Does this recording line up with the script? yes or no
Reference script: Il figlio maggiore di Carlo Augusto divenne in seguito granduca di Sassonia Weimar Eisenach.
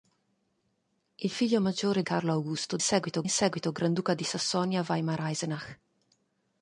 no